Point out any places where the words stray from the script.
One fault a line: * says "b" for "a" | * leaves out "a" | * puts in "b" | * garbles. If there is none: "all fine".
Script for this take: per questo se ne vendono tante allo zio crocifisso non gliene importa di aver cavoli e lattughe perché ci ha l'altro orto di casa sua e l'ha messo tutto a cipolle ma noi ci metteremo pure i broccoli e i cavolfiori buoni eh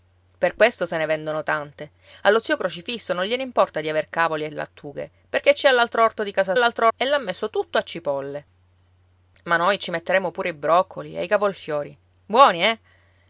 * says "l'altro" for "sua"